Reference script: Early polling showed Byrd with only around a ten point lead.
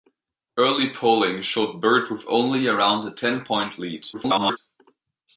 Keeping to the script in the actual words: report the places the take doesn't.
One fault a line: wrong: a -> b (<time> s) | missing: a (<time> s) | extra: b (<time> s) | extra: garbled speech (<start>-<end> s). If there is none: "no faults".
extra: garbled speech (4.1-4.6 s)